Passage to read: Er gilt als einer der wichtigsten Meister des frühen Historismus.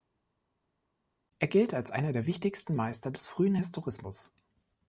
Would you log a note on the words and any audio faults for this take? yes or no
no